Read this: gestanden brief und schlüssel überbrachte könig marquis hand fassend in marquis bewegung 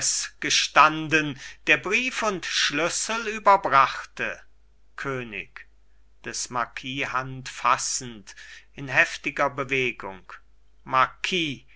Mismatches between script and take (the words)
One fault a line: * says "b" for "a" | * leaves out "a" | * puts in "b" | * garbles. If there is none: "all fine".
* puts in "der"
* puts in "des"
* says "heftiger" for "marquis"